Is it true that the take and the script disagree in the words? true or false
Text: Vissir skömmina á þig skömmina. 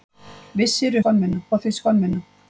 false